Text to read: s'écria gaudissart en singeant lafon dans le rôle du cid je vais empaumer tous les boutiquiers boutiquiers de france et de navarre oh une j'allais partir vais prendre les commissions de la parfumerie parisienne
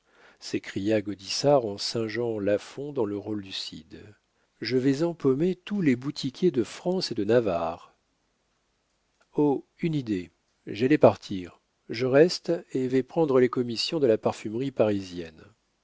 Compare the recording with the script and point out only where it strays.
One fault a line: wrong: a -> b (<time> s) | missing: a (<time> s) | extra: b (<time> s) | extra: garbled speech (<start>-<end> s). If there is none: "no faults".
missing: boutiquiers (6.5 s)
extra: idée (9.9 s)
extra: je reste et (11.9 s)